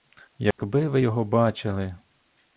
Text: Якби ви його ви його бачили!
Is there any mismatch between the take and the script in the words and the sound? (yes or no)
yes